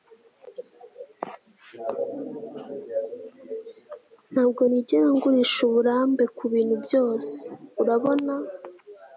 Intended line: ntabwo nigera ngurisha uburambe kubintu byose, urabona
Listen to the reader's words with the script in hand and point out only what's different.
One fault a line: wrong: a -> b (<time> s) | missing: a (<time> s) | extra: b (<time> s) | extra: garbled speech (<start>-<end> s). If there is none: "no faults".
no faults